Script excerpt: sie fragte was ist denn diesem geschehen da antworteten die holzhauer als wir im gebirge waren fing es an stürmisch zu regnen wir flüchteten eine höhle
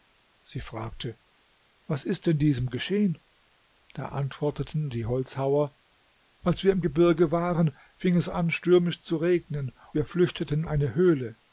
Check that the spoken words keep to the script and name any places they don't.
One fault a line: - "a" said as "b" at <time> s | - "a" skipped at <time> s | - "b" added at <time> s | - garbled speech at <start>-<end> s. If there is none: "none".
none